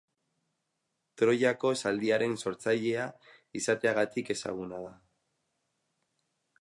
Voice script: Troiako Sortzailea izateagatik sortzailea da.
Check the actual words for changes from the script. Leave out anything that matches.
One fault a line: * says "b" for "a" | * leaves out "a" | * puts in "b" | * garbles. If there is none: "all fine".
* puts in "Zaldiaren"
* says "ezaguna" for "sortzailea"